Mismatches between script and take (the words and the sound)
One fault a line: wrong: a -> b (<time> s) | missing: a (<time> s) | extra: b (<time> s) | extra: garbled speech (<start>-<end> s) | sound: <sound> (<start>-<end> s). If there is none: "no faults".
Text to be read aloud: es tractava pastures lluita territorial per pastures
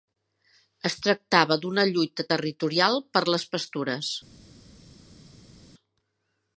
wrong: pastures -> d'una (1.6 s)
extra: les (3.4 s)